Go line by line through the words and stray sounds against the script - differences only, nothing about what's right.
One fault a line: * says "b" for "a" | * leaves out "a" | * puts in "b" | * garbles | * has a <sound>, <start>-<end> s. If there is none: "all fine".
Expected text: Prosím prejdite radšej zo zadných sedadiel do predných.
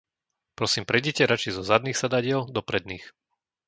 all fine